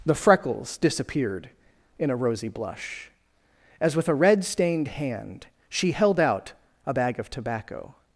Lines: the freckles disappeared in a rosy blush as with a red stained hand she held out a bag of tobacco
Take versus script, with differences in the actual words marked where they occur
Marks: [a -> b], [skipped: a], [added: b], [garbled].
the freckles disappeared in a rosy blush as with a red stained hand she held out a bag of tobacco